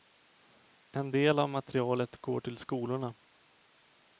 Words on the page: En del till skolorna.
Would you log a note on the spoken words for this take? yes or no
yes